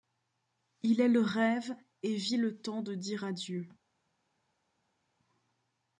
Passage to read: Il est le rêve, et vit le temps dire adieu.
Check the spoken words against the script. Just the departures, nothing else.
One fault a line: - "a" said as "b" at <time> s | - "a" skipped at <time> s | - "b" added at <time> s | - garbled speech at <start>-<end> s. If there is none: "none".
- "de" added at 2.8 s